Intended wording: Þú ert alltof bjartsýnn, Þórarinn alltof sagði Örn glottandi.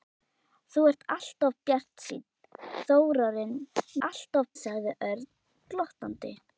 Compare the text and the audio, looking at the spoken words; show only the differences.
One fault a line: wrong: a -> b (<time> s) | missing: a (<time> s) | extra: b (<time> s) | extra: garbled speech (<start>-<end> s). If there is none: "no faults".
no faults